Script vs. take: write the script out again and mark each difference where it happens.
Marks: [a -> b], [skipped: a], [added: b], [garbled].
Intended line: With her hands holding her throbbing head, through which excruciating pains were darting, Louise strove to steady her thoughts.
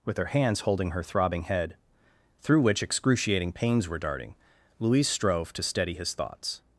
With her hands holding her throbbing head, through which excruciating pains were darting, Louise strove to steady [her -> his] thoughts.